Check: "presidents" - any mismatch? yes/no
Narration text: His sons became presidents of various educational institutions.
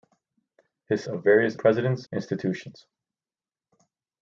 yes